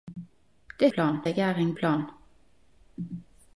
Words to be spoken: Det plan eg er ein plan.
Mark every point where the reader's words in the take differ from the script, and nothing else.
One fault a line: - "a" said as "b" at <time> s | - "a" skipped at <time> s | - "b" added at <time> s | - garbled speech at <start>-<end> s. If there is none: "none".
none